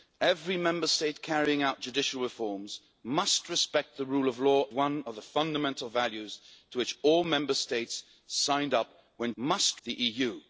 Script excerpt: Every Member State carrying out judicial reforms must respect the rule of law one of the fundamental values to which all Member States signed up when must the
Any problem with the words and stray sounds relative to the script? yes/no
no